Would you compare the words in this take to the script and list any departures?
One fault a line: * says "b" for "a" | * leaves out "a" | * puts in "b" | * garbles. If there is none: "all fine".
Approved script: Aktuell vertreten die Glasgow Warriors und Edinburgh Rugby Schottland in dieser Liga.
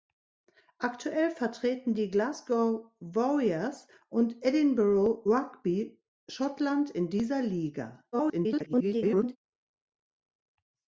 * garbles